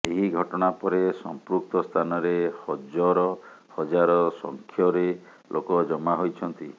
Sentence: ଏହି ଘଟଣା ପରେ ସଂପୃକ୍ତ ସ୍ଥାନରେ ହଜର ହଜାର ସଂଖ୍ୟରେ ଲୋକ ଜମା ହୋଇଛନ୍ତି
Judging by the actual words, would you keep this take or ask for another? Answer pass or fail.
pass